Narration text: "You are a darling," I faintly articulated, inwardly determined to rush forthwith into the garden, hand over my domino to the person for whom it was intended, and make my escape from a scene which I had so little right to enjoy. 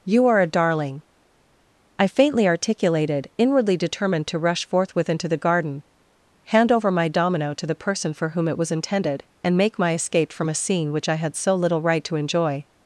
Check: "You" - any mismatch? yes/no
no